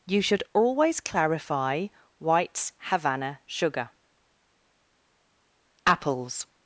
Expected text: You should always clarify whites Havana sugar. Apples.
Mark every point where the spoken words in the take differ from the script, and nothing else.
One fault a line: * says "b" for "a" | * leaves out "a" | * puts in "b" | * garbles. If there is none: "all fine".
all fine